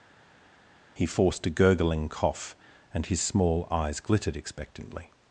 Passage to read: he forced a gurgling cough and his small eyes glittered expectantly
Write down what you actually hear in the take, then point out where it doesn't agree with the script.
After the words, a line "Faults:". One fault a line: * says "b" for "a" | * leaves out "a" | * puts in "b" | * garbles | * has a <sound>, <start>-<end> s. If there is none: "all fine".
he forced a gurgling cough and his small eyes glittered expectantly
Faults:
all fine